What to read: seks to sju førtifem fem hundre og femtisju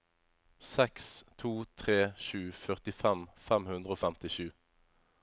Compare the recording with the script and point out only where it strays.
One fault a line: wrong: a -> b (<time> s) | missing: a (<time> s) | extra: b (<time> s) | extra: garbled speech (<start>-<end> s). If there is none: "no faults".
extra: tre (1.8 s)